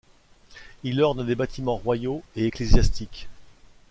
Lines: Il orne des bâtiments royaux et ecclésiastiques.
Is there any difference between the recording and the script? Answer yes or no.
no